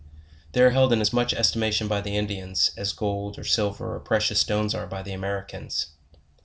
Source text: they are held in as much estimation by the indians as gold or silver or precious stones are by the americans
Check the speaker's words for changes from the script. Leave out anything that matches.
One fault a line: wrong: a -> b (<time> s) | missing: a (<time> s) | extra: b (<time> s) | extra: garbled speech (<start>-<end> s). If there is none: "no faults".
no faults